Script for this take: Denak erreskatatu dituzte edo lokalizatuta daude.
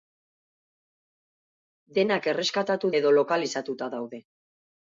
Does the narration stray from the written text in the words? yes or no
yes